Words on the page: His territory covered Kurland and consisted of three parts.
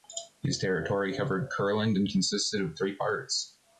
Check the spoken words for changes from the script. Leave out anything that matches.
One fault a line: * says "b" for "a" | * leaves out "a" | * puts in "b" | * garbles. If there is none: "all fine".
all fine